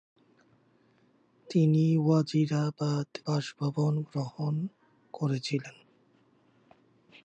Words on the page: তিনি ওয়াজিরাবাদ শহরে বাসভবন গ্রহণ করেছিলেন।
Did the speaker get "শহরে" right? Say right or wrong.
wrong